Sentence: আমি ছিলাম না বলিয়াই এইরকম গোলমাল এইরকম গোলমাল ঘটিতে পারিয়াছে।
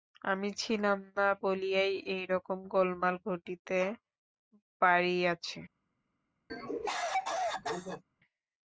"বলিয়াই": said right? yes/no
yes